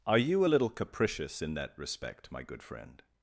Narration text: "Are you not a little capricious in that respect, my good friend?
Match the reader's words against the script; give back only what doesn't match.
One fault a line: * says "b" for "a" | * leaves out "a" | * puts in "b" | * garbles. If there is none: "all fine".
* leaves out "not"